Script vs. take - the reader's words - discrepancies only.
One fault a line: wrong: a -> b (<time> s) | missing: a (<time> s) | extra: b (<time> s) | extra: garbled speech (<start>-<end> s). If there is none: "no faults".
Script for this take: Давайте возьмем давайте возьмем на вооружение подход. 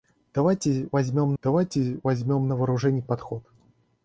no faults